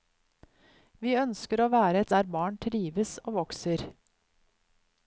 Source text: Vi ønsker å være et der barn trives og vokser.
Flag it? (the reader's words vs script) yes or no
no